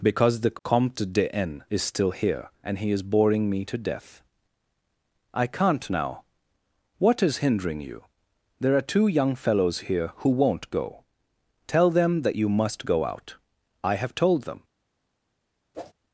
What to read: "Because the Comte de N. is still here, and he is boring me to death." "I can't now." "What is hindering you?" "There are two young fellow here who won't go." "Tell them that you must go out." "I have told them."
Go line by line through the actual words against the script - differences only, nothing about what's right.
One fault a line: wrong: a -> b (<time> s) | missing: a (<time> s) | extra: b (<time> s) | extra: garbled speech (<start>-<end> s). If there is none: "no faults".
wrong: fellow -> fellows (9.3 s)